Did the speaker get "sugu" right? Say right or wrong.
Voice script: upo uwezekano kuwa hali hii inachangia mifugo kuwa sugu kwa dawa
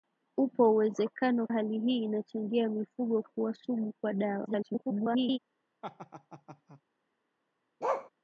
right